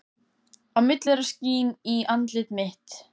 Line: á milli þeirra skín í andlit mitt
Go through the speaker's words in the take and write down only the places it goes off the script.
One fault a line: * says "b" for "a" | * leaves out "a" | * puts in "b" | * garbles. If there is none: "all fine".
all fine